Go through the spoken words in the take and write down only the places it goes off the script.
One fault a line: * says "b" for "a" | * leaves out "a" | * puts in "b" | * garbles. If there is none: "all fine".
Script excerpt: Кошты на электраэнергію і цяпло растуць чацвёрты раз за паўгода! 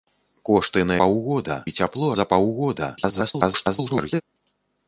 * says "паўгода" for "электраэнергію"
* leaves out "растуць чацвёрты раз"
* garbles